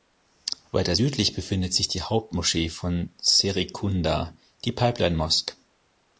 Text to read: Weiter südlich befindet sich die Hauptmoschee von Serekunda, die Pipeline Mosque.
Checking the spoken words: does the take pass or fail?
pass